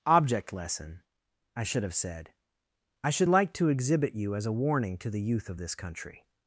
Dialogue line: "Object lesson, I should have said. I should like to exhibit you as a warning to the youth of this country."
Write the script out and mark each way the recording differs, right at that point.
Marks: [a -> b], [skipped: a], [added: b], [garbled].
"Object lesson, I should have said. I should like to exhibit you as a warning to the youth of this country."